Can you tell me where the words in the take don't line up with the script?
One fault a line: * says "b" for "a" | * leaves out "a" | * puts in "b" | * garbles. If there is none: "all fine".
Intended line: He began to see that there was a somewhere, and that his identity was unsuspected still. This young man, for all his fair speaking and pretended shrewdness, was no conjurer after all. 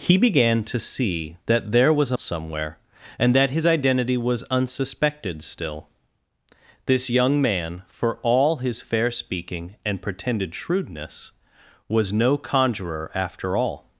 all fine